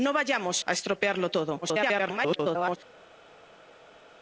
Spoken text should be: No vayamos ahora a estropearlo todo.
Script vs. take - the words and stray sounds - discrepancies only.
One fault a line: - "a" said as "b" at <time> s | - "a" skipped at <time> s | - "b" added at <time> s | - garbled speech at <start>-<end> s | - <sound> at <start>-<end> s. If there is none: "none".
- "ahora" skipped at 0.6 s
- garbled speech at 1.6-2.8 s